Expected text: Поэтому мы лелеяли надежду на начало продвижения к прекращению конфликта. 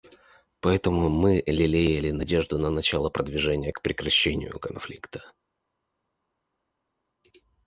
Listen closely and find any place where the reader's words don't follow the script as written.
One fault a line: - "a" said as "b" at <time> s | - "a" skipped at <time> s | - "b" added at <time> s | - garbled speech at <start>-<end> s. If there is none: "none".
none